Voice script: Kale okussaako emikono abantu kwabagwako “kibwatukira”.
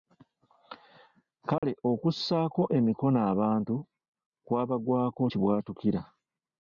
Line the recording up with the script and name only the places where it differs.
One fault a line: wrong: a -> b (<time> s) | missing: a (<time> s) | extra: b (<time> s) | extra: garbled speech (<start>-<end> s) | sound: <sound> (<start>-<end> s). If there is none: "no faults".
sound: dropout (1.6-1.6 s)